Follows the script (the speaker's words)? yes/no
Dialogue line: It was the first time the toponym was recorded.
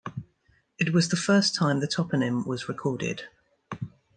yes